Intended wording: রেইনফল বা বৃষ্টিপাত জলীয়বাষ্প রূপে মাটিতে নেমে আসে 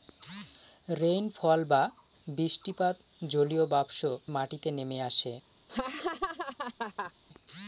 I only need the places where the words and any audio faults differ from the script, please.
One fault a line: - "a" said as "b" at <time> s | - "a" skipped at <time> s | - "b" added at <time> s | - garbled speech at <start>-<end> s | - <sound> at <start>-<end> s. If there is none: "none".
- "রূপে" skipped at 4.0 s
- laugh at 5.7-7.1 s